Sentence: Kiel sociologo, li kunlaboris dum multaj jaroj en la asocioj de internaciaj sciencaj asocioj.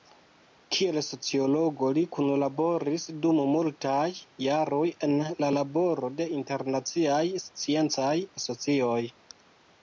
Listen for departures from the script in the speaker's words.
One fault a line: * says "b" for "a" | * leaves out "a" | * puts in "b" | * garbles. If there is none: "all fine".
* says "laboro" for "asocioj"